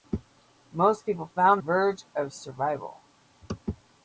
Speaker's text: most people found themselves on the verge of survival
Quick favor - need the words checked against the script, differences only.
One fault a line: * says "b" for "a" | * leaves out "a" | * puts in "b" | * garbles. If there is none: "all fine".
* leaves out "themselves on the"